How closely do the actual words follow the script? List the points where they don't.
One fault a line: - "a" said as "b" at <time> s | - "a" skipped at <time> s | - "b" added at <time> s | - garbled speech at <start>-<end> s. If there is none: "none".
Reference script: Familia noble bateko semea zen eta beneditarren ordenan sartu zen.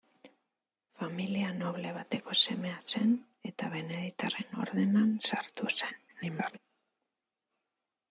- garbled speech at 6.1-6.6 s